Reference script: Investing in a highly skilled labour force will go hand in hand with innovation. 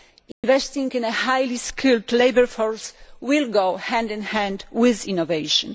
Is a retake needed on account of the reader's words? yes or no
no